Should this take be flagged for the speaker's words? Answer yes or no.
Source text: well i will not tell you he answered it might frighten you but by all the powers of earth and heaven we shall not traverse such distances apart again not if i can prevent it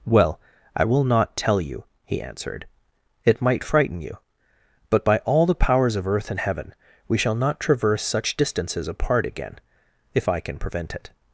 yes